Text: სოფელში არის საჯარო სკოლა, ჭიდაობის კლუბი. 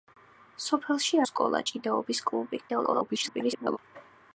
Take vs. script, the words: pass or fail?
fail